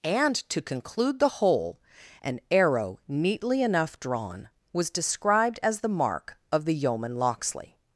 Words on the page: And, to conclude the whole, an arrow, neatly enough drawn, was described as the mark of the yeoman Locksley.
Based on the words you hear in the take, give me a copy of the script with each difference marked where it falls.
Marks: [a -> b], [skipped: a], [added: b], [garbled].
And, to conclude the whole, an arrow, neatly enough drawn, was described as the mark of the yeoman Locksley.